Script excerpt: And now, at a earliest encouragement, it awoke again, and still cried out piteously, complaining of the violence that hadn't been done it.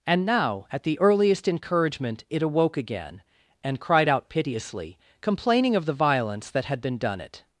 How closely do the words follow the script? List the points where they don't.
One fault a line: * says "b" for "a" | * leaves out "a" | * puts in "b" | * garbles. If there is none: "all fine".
* says "the" for "a"
* leaves out "still"
* says "had" for "hadn't"